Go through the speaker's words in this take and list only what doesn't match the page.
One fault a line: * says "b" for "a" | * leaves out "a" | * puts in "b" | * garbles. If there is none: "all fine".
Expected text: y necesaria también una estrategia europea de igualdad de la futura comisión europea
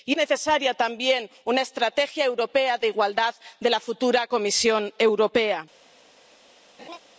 all fine